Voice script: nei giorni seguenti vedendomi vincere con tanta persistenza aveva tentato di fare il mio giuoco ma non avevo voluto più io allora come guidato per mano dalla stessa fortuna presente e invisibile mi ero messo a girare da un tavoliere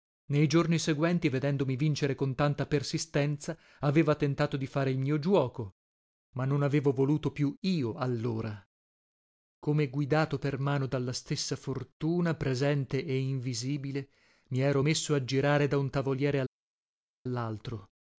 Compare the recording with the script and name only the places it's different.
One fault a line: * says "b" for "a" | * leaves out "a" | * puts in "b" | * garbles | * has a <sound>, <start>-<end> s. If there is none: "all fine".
all fine